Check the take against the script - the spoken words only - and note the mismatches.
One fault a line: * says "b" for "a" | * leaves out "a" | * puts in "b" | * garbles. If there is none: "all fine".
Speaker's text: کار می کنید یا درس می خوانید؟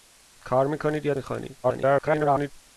* leaves out "درس"
* garbles